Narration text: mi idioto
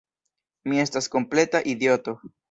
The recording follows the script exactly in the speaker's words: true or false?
false